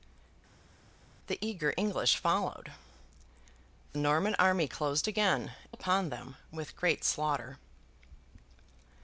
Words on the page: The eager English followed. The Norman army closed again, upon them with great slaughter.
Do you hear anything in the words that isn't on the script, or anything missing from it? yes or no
no